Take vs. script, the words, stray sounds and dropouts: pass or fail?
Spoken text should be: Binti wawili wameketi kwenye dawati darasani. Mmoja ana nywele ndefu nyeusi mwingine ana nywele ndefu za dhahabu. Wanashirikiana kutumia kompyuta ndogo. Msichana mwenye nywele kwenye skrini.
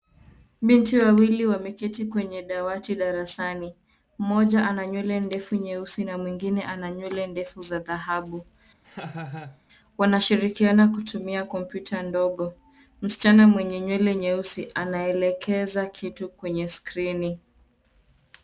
fail